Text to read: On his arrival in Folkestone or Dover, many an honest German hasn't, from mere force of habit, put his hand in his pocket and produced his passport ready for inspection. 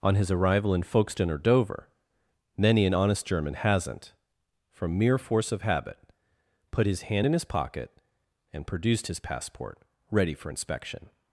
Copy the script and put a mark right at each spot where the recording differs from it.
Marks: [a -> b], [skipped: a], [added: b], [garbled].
On his arrival in Folkestone or Dover, many an honest German hasn't, from mere force of habit, put his hand in his pocket and produced his passport ready for inspection.